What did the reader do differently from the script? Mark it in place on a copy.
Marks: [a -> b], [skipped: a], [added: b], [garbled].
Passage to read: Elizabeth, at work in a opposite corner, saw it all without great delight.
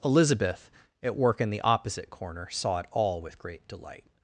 Elizabeth, at work in [a -> the] opposite corner, saw it all [without -> with] great delight.